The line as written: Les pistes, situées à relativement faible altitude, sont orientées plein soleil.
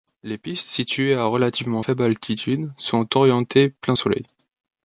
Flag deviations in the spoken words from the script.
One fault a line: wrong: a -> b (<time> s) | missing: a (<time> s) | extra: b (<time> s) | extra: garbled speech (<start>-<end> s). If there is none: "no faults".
no faults